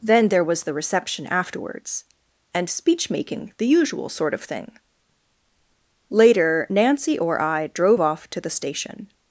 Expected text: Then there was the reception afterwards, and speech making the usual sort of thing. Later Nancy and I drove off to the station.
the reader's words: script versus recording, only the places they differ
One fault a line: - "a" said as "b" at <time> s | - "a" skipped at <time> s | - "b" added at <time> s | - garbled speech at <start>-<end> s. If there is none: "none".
- "and" said as "or" at 7.2 s